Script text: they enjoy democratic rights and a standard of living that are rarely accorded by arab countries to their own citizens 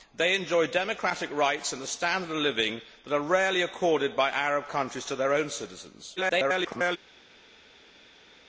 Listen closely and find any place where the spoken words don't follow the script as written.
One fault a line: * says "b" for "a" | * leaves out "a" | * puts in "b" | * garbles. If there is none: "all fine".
* garbles